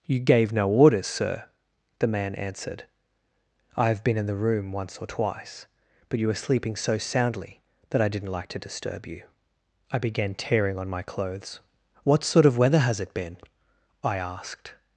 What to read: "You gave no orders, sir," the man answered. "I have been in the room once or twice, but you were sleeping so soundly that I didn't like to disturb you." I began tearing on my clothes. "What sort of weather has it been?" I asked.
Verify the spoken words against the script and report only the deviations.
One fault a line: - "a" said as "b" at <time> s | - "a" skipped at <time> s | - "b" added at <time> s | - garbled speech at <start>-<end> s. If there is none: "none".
none